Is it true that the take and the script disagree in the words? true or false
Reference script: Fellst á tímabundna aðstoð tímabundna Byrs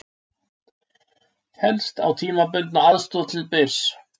true